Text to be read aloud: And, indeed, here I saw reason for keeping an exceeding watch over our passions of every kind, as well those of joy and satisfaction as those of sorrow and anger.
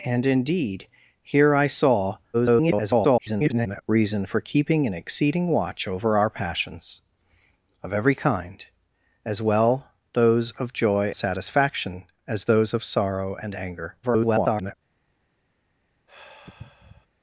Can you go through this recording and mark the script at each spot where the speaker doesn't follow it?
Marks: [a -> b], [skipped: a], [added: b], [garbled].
And, indeed, here I saw [garbled] reason for keeping an exceeding watch over our passions of every kind, as well those of joy [skipped: and] satisfaction as those of sorrow and anger. [garbled]